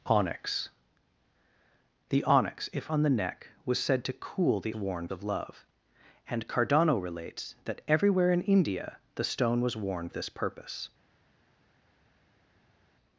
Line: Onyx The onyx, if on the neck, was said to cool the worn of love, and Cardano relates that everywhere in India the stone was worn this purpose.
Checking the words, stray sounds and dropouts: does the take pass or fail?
pass